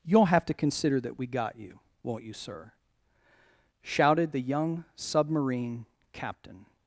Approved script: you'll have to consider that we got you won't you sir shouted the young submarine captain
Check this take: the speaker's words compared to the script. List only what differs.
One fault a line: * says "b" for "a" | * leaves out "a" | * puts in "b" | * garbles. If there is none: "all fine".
all fine